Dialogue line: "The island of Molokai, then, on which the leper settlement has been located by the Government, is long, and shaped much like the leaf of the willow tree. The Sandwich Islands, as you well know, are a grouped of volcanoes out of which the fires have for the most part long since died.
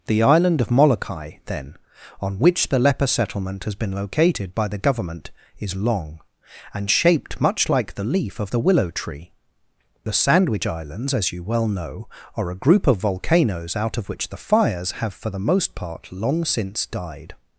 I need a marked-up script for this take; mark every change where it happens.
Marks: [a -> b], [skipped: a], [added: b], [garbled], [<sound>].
"The island of Molokai, then, on which the leper settlement has been located by the Government, is long, and shaped much like the leaf of the willow tree. The Sandwich Islands, as you well know, are a [grouped -> group] of volcanoes out of which the fires have for the most part long since died.